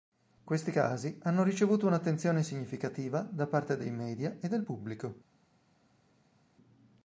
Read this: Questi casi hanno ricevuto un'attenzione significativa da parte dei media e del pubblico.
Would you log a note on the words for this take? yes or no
no